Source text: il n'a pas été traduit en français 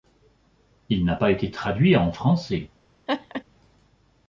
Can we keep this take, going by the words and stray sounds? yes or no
no